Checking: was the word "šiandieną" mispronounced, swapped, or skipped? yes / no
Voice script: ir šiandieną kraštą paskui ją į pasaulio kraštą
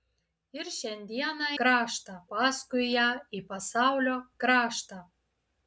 no